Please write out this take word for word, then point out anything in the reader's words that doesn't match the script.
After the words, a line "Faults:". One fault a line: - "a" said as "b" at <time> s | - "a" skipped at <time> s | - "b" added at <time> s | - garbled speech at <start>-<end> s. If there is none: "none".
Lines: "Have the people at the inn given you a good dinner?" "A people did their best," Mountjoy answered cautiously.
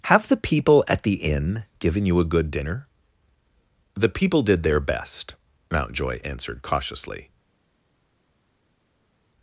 "Have the people at the inn given you a good dinner?" "The people did their best," Mountjoy answered cautiously.
Faults:
- "A" said as "The" at 3.9 s